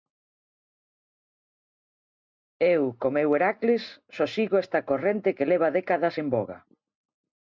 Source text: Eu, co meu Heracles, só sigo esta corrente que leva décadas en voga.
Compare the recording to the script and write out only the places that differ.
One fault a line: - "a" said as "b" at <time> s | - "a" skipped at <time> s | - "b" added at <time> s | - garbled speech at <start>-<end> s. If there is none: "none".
none